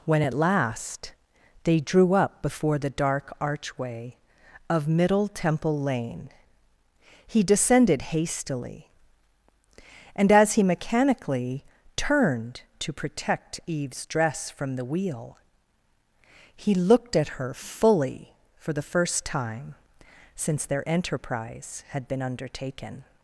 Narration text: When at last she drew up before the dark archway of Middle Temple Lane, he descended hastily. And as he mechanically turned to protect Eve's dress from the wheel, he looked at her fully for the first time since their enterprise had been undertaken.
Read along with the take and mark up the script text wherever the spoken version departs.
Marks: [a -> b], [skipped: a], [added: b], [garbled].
When at last [she -> they] drew up before the dark archway of Middle Temple Lane, he descended hastily. And as he mechanically turned to protect Eve's dress from the wheel, he looked at her fully for the first time since their enterprise had been undertaken.